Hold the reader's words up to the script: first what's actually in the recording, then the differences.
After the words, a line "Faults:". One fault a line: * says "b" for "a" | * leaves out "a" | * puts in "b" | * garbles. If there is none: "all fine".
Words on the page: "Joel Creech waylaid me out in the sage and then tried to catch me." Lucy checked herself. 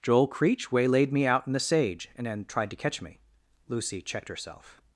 "Joel Creech waylaid me out in the sage and then tried to catch me." Lucy checked herself.
Faults:
all fine